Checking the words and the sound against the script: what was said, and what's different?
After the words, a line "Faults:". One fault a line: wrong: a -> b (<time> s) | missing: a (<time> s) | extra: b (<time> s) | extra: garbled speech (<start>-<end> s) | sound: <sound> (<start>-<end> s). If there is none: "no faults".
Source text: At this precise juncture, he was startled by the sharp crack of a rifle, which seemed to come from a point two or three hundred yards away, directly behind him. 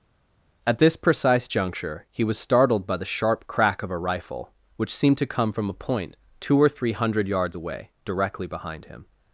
At this precise juncture, he was startled by the sharp crack of a rifle, which seemed to come from a point two or three hundred yards away, directly behind him.
Faults:
no faults